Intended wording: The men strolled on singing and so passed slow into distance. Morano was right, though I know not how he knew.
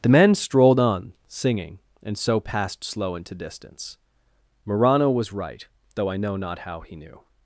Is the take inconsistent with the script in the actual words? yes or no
no